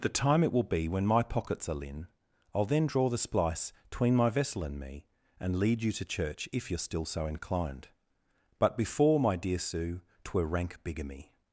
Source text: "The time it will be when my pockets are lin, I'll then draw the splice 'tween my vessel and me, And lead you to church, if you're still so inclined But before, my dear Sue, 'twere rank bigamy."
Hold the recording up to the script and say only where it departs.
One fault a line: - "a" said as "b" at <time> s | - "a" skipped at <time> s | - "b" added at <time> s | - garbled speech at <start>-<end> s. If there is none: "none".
none